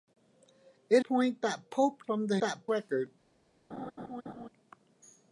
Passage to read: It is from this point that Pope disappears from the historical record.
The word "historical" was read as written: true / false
false